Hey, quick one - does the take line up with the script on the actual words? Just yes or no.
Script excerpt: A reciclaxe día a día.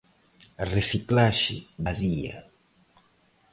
no